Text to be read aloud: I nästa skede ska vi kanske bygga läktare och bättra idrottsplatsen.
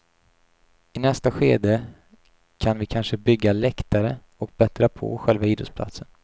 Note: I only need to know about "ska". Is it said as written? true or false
false